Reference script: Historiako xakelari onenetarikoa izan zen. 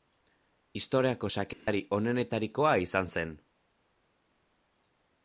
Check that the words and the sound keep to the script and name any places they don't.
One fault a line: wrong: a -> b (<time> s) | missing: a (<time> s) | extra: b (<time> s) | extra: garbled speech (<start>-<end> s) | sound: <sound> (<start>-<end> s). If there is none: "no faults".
sound: dropout (1.5-1.7 s)